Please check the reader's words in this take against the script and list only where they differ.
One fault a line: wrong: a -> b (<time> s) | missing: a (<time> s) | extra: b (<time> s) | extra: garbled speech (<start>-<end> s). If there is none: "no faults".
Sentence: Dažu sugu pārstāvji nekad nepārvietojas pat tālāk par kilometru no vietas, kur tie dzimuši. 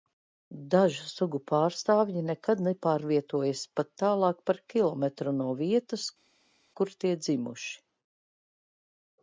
no faults